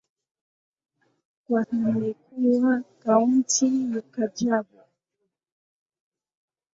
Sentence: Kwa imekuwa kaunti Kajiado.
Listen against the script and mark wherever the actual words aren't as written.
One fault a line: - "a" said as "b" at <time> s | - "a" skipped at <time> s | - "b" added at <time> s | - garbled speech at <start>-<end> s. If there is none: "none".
none